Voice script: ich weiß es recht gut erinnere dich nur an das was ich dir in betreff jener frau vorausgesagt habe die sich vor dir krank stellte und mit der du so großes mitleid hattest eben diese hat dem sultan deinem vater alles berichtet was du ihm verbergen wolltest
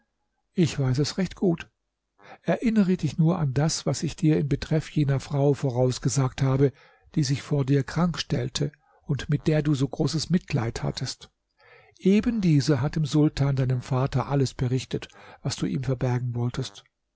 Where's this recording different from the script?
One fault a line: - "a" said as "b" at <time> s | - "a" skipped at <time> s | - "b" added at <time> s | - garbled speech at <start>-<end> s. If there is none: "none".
none